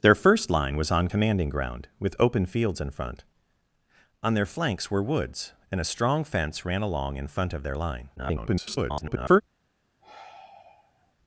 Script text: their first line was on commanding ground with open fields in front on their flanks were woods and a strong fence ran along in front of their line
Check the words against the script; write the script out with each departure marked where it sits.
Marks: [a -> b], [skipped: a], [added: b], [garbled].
their first line was on commanding ground with open fields in front on their flanks were woods and a strong fence ran along in front of their line [garbled]